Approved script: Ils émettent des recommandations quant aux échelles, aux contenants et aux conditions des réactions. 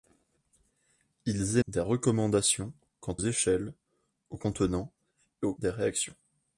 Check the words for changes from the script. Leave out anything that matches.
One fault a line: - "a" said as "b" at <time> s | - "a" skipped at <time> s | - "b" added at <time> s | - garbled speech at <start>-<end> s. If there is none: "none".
- "émettent" skipped at 1.6 s
- "aux" skipped at 3.2 s
- "conditions" skipped at 5.5 s